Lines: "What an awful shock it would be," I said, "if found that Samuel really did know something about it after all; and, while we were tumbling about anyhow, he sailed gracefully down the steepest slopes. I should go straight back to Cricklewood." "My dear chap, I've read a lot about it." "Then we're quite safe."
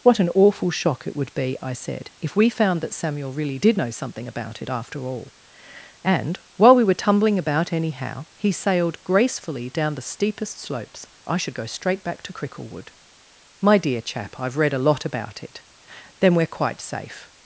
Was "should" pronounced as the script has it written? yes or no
yes